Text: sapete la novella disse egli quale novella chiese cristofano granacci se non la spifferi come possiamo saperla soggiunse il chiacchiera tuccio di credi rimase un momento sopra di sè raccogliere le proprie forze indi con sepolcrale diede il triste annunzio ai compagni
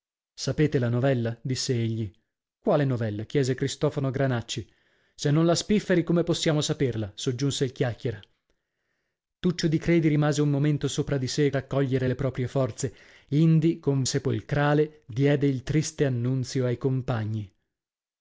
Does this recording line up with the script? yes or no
yes